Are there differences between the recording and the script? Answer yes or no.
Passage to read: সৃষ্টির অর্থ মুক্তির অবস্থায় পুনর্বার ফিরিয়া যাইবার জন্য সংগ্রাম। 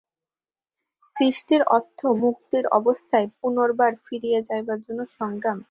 no